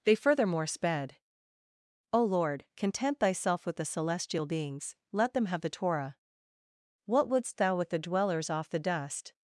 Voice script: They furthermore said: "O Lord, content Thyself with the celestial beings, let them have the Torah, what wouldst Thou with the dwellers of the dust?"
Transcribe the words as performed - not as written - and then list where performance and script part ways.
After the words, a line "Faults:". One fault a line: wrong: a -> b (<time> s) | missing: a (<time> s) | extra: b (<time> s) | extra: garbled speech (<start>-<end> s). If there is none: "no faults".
They furthermore sped: "O Lord, content Thyself with the celestial beings, let them have the Torah, what wouldst Thou with the dwellers off the dust?"
Faults:
wrong: said -> sped (0.7 s)
wrong: of -> off (8.5 s)